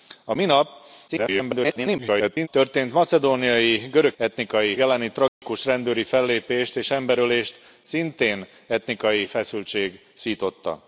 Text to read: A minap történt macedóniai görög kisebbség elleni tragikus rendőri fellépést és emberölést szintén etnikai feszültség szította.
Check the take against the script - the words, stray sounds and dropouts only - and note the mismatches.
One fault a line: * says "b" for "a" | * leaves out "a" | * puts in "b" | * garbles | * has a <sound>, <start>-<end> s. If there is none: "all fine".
* garbles
* says "etnikai" for "kisebbség"
* has a dropout, 5.3-5.4 s